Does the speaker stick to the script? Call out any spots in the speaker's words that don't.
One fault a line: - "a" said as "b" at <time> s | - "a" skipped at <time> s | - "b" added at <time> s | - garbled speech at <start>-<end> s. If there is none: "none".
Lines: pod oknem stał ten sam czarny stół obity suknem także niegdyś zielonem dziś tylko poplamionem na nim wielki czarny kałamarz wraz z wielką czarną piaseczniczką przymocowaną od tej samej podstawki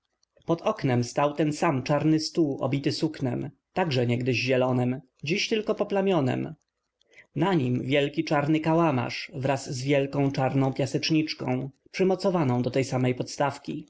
- "od" said as "do" at 12.6 s